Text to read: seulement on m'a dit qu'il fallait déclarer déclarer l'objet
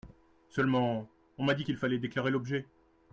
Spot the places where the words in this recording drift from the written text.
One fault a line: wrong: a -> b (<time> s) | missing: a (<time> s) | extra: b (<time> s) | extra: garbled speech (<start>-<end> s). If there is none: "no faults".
missing: déclarer (2.3 s)